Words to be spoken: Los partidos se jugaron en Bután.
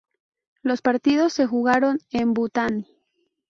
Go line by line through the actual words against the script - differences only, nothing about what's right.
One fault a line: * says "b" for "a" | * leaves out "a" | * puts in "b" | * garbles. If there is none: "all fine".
all fine